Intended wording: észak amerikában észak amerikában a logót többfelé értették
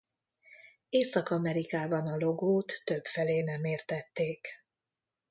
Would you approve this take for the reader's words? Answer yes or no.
no